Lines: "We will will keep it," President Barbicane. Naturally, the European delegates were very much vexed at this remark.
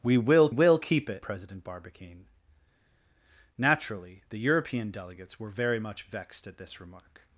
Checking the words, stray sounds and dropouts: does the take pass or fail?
pass